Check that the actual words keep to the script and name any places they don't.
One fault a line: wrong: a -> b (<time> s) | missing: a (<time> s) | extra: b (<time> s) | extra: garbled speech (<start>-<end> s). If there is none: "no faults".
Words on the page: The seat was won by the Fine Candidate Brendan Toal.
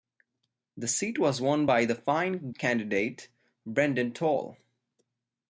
no faults